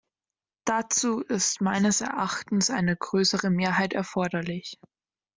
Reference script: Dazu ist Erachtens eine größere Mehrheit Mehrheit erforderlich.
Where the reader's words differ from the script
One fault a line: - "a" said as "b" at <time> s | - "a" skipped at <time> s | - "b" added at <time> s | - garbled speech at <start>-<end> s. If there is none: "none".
- "meines" added at 1.6 s
- "Mehrheit" skipped at 3.9 s